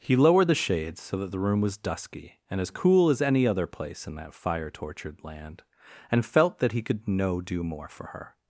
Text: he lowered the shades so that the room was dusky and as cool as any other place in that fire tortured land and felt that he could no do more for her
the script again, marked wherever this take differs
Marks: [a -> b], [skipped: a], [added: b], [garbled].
he lowered the shades so that the room was dusky and as cool as any other place in that fire tortured land and felt that he could no do more for her